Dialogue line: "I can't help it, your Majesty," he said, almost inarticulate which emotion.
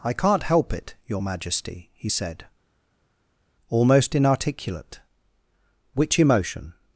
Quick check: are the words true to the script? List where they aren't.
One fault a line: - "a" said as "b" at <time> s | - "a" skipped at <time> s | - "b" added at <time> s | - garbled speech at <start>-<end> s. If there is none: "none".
none